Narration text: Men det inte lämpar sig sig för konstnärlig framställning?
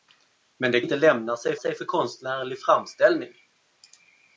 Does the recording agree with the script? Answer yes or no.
yes